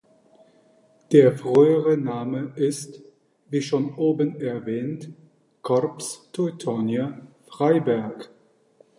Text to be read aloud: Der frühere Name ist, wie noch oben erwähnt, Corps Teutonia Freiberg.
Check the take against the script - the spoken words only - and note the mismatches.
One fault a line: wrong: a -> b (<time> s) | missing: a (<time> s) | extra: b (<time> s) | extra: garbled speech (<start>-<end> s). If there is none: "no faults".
wrong: noch -> schon (3.6 s)